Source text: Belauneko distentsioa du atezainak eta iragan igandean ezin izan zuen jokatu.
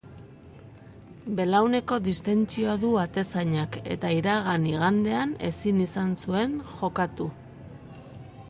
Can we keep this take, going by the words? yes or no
yes